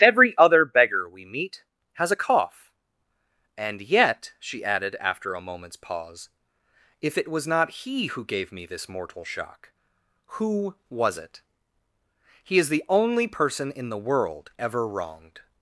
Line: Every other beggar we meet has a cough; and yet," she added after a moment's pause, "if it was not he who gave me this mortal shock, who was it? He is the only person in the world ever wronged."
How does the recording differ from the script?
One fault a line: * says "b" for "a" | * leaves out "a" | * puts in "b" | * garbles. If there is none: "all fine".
all fine